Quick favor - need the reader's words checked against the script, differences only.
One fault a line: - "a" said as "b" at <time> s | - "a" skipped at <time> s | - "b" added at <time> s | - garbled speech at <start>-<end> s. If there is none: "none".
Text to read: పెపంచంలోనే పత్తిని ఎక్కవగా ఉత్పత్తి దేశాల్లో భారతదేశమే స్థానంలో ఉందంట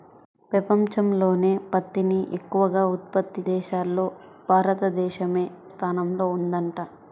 none